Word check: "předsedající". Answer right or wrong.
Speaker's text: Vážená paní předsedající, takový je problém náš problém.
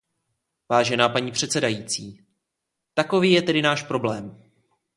right